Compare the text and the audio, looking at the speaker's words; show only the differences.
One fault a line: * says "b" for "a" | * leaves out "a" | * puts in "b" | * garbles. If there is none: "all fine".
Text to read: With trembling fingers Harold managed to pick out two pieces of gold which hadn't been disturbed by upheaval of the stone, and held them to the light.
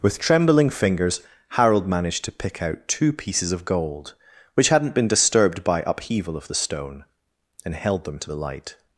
all fine